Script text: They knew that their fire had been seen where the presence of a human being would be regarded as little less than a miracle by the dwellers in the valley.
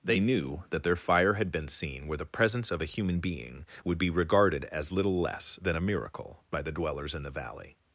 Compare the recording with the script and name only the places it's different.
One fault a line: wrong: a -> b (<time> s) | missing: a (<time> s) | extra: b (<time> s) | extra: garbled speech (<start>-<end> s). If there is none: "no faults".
no faults